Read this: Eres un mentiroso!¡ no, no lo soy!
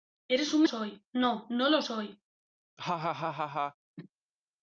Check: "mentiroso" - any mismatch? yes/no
yes